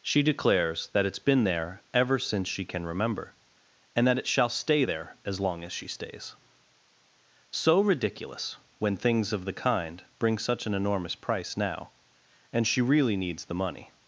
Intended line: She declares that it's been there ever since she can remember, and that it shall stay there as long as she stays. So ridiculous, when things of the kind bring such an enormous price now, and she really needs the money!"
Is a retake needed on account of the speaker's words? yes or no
no